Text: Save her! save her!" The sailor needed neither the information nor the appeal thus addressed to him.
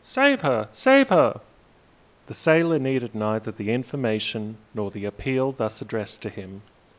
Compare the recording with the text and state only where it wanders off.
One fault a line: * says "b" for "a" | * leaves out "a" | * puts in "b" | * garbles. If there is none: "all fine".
all fine